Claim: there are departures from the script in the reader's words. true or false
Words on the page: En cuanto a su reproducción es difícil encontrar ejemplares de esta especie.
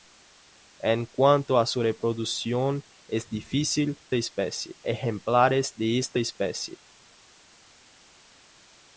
true